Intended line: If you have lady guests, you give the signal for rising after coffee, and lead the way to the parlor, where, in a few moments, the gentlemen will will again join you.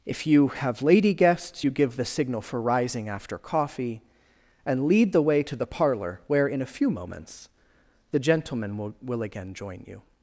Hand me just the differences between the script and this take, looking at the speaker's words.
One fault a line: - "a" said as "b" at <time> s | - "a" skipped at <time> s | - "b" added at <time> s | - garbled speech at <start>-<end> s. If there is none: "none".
none